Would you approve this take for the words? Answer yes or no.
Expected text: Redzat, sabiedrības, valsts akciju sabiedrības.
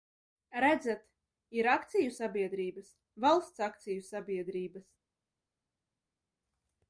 no